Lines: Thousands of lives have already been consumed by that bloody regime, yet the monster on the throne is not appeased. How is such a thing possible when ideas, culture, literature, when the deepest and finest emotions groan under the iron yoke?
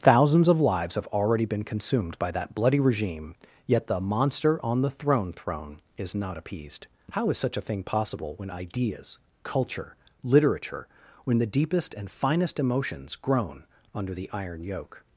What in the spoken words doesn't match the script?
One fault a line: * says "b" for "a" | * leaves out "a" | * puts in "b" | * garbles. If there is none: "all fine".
* puts in "throne"